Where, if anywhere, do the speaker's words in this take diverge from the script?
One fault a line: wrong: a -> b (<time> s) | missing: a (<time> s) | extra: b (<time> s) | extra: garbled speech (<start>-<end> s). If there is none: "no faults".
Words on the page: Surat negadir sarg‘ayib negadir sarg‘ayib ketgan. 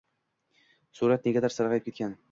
missing: negadir sarg‘ayib (1.9 s)